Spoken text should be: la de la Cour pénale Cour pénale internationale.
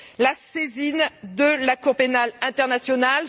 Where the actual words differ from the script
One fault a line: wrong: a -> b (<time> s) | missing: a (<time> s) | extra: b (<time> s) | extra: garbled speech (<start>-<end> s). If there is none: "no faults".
extra: saisine (0.3 s)
missing: Cour pénale (2.3 s)